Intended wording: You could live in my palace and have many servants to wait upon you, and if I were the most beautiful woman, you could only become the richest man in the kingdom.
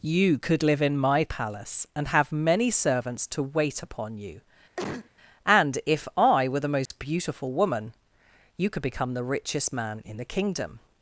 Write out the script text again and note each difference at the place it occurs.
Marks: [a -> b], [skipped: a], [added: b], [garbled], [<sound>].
You could live in my palace and have many servants to wait upon you, [cough] and if I were the most [dropout] beautiful woman, you could [skipped: only] become the richest man in the kingdom.